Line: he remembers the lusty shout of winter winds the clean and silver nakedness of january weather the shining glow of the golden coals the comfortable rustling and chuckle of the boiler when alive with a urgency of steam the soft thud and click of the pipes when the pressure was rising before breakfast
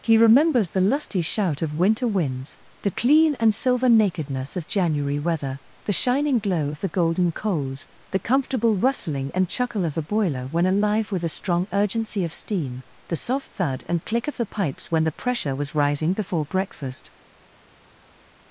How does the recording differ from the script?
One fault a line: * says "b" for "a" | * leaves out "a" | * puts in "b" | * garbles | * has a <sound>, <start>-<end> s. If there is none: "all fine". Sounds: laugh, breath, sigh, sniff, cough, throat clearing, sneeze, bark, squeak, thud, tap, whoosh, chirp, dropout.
* puts in "strong"